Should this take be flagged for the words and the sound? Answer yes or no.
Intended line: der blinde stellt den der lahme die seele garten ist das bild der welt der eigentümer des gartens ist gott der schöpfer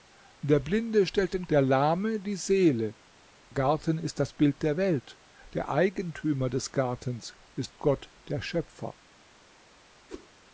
yes